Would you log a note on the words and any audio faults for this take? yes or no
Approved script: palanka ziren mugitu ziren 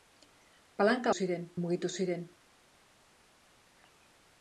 no